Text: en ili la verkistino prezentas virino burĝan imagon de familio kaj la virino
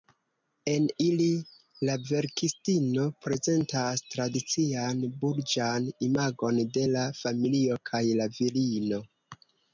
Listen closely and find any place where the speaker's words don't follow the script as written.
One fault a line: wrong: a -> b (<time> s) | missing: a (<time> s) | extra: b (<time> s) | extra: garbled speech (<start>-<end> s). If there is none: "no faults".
wrong: virino -> tradician (4.2 s)
extra: la (7.0 s)